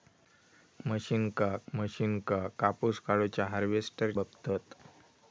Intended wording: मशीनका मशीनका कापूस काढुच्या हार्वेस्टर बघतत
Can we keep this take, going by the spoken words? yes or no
yes